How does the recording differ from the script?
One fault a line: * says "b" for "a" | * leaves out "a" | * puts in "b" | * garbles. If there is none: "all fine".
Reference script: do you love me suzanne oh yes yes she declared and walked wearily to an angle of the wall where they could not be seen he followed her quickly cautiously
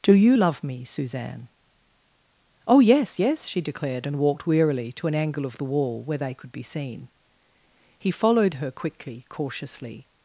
* leaves out "not"